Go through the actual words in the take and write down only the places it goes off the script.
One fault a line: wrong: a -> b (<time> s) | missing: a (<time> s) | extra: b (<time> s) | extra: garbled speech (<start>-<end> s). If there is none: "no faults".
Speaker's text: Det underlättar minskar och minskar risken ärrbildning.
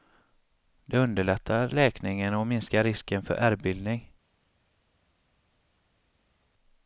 wrong: minskar -> läkningen (1.7 s)
extra: för (3.2 s)